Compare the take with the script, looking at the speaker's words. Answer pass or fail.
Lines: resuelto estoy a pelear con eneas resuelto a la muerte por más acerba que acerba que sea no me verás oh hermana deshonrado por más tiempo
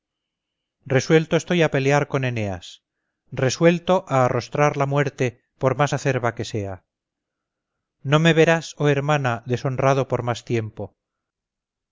fail